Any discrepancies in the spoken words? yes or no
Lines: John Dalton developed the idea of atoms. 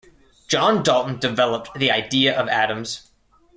no